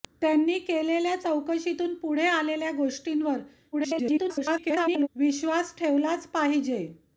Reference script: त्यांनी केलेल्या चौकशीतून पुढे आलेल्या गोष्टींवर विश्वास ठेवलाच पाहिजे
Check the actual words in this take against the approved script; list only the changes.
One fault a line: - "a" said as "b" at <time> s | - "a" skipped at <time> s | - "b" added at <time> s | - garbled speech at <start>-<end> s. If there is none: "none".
- garbled speech at 3.7-5.1 s